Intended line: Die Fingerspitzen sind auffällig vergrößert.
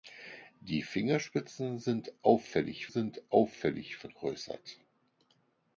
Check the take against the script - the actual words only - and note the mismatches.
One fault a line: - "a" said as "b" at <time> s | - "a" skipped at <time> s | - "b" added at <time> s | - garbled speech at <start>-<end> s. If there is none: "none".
- "sind auffällig" added at 2.9 s